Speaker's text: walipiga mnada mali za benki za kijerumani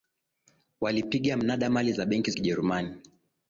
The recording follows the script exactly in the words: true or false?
false